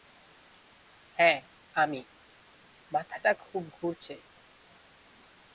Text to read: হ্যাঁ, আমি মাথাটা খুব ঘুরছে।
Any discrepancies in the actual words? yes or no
no